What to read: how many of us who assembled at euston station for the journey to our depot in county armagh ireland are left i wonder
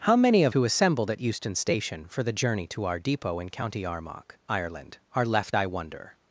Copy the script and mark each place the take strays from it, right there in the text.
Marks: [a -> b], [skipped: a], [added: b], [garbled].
how many of [skipped: us] who assembled at euston station for the journey to our depot in county armagh ireland are left i wonder